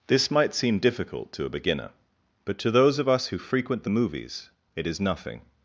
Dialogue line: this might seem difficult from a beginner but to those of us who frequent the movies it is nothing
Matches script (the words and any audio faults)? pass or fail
fail